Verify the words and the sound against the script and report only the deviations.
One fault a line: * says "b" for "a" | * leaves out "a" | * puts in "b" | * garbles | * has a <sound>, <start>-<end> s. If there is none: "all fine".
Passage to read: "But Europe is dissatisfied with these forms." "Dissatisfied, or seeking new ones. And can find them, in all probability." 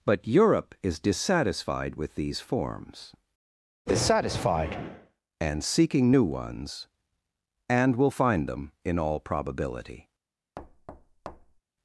* says "and" for "or"
* says "will" for "can"
* has a thud, 10.6-11.6 s